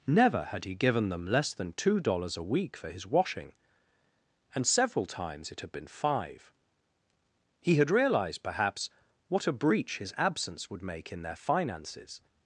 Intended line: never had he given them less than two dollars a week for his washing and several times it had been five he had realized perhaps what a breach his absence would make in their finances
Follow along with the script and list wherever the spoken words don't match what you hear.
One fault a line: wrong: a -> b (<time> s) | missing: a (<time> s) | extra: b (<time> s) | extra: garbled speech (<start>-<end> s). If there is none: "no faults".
no faults